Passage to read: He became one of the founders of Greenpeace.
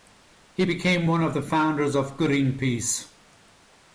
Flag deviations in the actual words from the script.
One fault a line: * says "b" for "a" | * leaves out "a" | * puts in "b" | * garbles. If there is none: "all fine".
all fine